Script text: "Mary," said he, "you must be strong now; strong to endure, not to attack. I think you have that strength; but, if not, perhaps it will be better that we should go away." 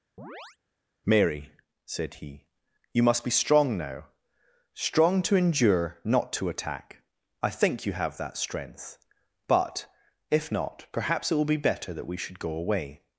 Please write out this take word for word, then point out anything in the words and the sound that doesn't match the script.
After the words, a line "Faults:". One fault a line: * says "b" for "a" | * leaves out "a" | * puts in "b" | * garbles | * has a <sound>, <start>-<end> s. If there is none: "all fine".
"Mary," said he, "you must be strong now; strong to endure, not to attack. I think you have that strength; but, if not, perhaps it will be better that we should go away."
Faults:
* has a chirp, 0.2-0.6 s